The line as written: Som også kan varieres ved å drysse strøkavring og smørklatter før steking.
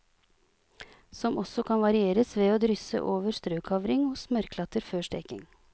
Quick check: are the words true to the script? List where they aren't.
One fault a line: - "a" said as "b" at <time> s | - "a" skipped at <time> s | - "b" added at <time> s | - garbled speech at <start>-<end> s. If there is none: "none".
- "over" added at 3.1 s